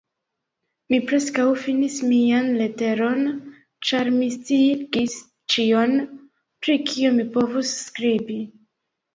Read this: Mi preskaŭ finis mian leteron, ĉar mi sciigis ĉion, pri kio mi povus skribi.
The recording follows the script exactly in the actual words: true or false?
true